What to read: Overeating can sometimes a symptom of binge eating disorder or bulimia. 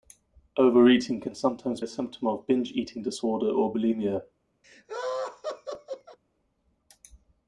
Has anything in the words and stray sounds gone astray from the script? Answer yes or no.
yes